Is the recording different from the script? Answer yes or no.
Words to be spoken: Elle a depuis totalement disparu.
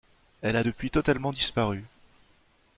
no